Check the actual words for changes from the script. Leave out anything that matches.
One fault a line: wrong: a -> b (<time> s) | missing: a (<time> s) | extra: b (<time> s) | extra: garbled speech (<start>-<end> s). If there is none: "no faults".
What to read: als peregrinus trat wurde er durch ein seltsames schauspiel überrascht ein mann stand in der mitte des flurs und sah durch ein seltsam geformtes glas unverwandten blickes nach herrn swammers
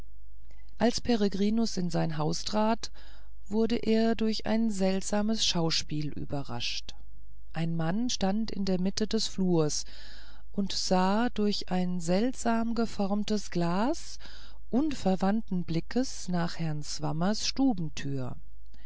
extra: in sein haus (1.8 s)